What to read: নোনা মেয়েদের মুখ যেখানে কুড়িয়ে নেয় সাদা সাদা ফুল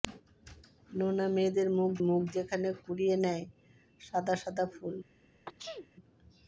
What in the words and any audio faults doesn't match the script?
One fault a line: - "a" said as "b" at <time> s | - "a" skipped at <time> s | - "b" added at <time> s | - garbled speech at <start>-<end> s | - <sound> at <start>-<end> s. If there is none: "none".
- "মুখ" added at 2.1 s
- sneeze at 5.5-5.9 s